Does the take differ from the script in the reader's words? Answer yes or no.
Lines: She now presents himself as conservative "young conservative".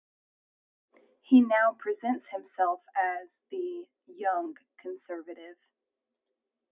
yes